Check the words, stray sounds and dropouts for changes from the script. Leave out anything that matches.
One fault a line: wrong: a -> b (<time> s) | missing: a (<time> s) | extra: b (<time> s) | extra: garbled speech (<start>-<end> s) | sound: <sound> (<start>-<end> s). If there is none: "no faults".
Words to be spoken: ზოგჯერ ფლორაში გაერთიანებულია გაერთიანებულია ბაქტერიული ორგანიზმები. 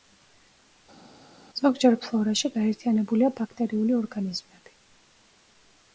missing: გაერთიანებულია (3.3 s)